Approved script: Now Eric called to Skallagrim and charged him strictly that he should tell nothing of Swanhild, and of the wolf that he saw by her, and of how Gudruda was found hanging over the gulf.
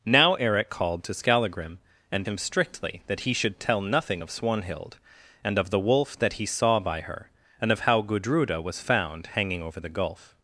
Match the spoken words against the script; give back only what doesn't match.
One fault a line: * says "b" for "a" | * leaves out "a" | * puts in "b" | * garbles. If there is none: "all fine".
* leaves out "charged"